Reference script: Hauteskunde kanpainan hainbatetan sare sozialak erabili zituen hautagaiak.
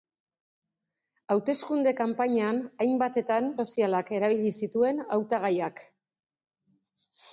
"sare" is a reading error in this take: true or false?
true